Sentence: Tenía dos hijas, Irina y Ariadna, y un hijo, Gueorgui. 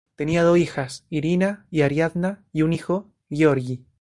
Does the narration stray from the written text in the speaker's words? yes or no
no